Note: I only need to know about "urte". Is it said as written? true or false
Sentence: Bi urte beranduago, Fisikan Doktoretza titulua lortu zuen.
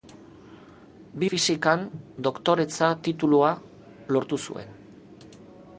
false